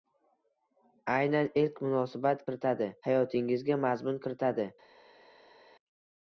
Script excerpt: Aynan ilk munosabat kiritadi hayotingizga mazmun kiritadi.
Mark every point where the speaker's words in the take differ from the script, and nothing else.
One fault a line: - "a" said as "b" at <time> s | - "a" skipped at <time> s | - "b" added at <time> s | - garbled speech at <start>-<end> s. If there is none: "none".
none